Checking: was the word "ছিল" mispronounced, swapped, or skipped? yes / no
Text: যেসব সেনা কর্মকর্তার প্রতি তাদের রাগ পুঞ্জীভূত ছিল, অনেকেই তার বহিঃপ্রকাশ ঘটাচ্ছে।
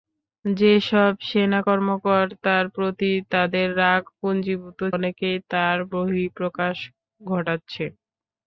yes